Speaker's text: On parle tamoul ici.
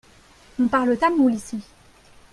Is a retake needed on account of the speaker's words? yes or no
no